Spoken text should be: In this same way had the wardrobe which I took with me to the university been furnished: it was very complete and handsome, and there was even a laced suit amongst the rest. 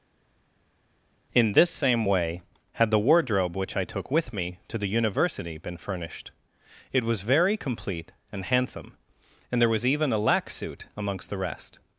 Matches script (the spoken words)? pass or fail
fail